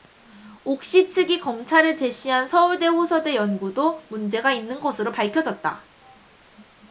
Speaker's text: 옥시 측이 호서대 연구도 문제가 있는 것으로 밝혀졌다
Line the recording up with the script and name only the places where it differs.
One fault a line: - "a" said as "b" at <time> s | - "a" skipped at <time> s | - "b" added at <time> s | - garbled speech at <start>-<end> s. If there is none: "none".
- "검찰에 제시한 서울대" added at 1.4 s